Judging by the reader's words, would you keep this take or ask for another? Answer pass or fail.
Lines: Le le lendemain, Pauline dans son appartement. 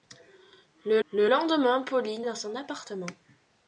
pass